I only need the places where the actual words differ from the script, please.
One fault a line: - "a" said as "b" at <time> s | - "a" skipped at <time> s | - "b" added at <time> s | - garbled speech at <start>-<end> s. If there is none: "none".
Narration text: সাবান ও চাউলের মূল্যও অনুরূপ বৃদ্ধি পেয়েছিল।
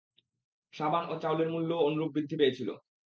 none